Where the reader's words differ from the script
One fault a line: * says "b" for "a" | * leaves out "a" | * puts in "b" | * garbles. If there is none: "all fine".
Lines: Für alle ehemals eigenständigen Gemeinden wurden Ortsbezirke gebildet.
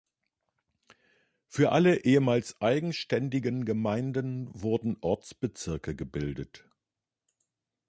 all fine